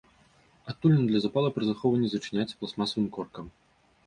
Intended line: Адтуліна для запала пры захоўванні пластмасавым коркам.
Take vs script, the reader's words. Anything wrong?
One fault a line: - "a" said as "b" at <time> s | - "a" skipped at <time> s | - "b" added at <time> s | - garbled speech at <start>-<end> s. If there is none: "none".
- "зачыняецца" added at 2.1 s